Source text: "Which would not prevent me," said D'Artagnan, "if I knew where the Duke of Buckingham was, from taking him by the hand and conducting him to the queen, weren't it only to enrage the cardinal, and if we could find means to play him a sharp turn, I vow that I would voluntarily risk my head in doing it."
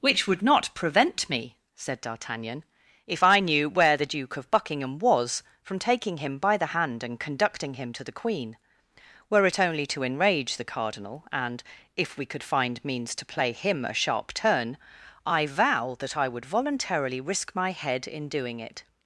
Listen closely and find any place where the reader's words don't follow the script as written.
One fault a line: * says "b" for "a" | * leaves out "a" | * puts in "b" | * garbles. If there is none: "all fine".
* says "were" for "weren't"